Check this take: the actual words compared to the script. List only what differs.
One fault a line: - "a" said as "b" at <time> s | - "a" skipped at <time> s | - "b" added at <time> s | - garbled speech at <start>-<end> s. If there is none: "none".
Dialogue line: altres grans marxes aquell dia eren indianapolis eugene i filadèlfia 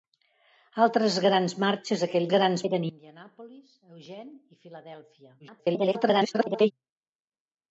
- "dia" said as "grans" at 2.3 s
- garbled speech at 5.4-6.7 s